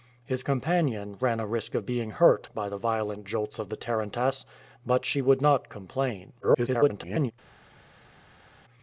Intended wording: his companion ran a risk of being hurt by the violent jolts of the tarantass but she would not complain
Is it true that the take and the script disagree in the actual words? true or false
true